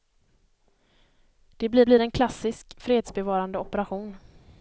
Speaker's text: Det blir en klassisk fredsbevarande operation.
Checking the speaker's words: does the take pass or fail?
fail